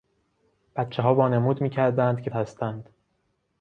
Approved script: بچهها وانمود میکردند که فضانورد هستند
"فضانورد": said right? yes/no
no